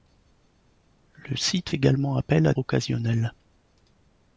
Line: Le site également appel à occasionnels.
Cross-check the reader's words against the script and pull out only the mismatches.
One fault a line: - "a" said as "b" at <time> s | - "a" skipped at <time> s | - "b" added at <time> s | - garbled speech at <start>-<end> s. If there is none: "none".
none